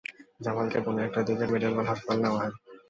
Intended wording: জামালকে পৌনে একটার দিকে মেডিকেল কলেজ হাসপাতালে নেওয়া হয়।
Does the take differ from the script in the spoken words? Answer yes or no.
no